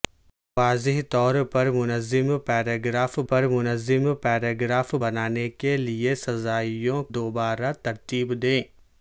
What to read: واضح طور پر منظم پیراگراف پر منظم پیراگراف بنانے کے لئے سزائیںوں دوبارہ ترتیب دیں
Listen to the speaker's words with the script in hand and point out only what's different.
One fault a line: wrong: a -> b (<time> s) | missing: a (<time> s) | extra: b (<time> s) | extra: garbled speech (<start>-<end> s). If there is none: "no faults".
no faults